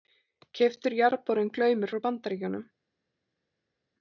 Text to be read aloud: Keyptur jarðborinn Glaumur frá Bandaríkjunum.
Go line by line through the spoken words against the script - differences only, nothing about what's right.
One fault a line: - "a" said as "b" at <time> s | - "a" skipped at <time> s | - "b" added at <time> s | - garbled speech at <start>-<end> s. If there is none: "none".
none